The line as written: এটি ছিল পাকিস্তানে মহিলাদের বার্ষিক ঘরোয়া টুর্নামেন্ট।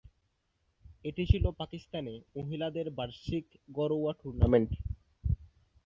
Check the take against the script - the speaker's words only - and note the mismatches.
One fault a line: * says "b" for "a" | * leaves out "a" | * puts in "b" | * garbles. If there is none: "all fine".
all fine